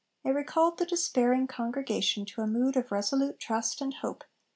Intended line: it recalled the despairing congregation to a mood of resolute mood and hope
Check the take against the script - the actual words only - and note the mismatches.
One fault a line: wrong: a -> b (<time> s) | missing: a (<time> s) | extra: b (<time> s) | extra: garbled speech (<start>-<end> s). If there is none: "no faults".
wrong: mood -> trust (3.4 s)